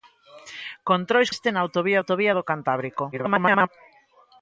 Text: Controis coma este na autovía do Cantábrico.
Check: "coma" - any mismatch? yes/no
yes